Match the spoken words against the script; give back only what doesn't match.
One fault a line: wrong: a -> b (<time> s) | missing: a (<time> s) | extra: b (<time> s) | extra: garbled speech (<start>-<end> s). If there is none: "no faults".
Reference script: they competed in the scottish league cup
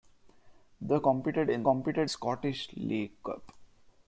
wrong: the -> competed (1.6 s)